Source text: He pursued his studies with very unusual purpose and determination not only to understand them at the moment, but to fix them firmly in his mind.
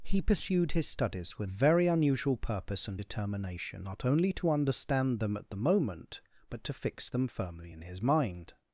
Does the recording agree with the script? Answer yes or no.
yes